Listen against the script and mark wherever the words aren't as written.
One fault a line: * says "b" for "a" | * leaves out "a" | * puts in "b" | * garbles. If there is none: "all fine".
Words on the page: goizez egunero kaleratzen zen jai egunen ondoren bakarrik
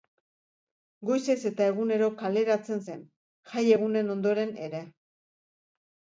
* puts in "eta"
* says "ere" for "bakarrik"